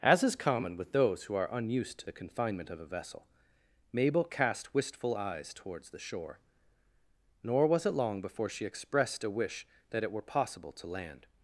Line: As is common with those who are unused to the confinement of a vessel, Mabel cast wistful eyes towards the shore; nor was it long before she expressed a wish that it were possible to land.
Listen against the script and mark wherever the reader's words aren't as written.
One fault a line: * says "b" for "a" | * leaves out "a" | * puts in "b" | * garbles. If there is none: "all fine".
all fine